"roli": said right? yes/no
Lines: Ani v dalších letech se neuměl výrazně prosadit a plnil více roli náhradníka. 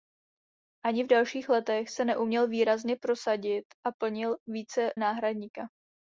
no